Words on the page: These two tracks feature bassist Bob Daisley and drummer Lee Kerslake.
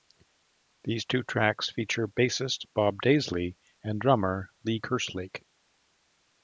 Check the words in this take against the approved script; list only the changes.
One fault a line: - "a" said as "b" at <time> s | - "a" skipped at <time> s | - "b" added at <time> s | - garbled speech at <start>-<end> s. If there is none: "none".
none